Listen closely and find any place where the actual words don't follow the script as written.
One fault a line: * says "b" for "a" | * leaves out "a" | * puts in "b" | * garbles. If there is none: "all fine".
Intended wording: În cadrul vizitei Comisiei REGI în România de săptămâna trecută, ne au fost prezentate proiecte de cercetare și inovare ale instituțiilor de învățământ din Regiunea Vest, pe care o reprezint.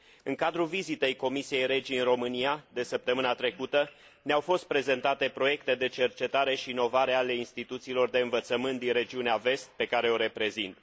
all fine